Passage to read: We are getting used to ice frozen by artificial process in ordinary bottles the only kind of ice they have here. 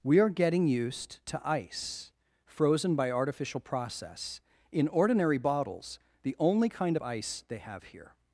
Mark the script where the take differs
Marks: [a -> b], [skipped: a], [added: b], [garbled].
We are getting used to ice frozen by artificial process in ordinary bottles the only kind of ice they have here.